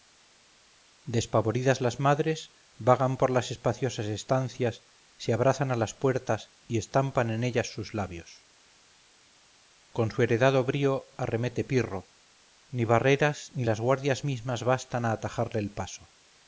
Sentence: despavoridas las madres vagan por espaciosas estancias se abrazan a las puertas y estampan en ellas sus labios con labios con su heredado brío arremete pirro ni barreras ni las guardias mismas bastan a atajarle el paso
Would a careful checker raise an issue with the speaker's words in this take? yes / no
yes